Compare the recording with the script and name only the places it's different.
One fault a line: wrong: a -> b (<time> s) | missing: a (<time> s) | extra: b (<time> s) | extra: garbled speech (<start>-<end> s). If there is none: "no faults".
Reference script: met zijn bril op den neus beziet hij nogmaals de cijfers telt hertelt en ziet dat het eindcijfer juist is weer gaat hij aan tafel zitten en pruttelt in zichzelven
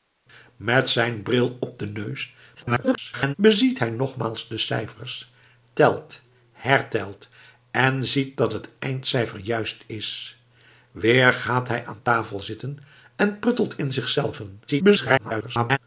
extra: garbled speech (2.5-3.4 s)
extra: garbled speech (14.7-15.8 s)